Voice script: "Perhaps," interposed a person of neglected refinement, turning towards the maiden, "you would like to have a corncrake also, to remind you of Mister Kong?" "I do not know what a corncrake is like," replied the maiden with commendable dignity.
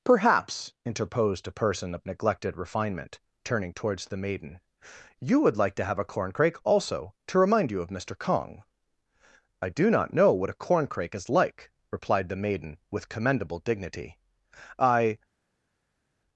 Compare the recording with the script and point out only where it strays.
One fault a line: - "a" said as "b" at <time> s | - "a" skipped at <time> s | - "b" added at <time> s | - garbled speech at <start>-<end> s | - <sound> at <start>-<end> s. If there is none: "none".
- "I" added at 14.8 s